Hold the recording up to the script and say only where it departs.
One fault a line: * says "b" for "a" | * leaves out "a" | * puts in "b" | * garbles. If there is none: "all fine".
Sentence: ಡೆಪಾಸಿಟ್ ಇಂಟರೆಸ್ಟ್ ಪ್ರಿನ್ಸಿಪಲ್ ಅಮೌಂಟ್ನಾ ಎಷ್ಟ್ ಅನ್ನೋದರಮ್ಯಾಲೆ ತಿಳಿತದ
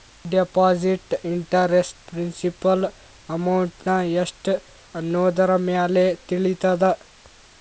all fine